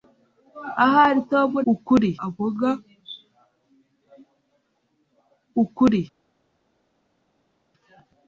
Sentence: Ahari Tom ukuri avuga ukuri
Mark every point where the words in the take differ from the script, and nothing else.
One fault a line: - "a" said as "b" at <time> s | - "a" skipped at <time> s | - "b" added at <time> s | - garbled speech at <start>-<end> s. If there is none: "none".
none